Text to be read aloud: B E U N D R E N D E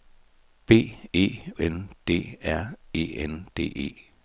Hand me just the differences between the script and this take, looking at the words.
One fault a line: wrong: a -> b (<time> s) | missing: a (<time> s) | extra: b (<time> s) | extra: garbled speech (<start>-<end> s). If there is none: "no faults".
missing: U (1.4 s)